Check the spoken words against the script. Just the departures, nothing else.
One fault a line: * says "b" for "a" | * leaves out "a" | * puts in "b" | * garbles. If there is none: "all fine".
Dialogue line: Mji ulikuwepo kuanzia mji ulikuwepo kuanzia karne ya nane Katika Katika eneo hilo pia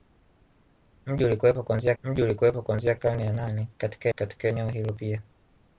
all fine